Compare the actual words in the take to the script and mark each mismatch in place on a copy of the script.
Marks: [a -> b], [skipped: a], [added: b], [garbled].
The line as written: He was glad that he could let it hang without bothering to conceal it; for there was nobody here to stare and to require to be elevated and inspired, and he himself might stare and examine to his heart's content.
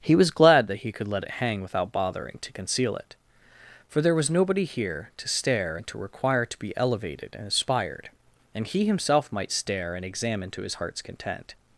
He was glad that he could let it hang without bothering to conceal it; for there was nobody here to stare and to require to be elevated and inspired, and he himself might stare and examine to his heart's content.